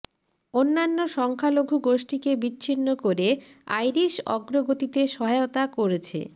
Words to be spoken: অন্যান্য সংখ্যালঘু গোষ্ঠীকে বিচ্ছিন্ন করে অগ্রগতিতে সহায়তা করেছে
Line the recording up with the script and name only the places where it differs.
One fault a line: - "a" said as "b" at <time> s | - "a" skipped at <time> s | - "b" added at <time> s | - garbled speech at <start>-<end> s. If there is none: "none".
- "আইরিশ" added at 3.8 s